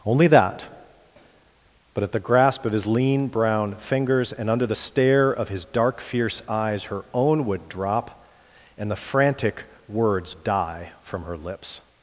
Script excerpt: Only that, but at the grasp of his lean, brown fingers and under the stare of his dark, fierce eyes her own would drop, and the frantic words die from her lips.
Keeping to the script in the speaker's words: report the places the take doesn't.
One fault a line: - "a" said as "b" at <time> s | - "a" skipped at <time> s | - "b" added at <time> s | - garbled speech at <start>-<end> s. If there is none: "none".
none